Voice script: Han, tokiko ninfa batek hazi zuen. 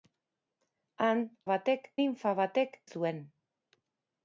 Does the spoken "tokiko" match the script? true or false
false